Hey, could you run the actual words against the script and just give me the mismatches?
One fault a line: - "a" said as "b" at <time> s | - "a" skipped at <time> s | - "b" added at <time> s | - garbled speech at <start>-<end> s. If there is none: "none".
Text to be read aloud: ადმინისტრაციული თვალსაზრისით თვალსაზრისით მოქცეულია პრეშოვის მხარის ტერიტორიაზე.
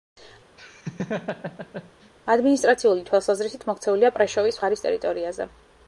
- "თვალსაზრისით" skipped at 3.7 s